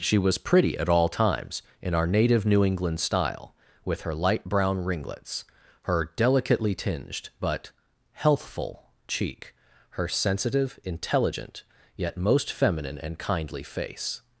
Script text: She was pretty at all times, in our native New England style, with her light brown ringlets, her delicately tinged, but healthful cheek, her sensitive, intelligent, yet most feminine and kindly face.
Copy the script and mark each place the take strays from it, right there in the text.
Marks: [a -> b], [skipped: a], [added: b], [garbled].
She was pretty at all times, in our native New England style, with her light brown ringlets, her delicately tinged, but healthful cheek, her sensitive, intelligent, yet most feminine and kindly face.